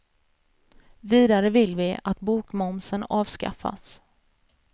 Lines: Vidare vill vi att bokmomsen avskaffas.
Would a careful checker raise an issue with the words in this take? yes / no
no